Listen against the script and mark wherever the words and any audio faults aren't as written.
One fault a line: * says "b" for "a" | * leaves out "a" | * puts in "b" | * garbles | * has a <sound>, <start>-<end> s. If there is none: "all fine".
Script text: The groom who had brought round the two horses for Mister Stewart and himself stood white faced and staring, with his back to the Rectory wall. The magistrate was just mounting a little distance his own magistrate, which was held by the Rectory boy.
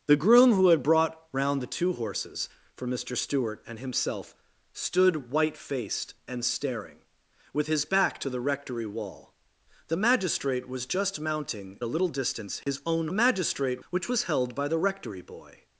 * has a dropout, 12.6-12.7 s